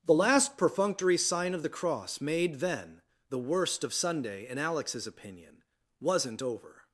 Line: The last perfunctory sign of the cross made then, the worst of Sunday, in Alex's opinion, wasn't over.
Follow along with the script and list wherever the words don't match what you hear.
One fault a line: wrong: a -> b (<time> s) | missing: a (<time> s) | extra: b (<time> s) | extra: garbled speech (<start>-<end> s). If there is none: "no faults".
no faults